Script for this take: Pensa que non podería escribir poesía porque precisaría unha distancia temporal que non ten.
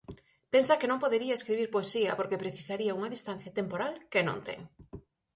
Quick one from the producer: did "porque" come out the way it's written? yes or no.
yes